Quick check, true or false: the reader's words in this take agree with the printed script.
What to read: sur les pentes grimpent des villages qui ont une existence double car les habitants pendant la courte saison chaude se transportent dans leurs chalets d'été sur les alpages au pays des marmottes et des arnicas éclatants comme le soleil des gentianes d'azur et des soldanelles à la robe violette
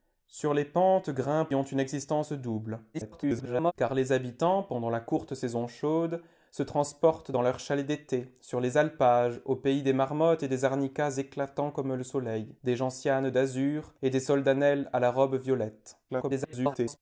false